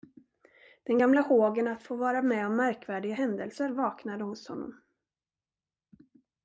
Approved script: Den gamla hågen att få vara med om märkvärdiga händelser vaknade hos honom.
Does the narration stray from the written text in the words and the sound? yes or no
no